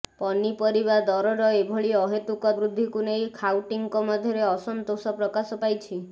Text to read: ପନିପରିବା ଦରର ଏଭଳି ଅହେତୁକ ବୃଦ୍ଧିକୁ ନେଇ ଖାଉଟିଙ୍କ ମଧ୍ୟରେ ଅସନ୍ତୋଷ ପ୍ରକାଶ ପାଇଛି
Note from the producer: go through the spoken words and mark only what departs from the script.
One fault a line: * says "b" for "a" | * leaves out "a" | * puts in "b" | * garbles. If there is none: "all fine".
all fine